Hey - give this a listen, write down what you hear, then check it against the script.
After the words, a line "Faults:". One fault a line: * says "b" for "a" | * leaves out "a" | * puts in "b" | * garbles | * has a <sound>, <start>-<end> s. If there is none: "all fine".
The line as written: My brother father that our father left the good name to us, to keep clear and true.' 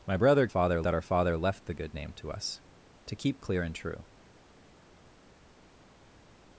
My brother father that our father left the good name to us, to keep clear and true.'
Faults:
all fine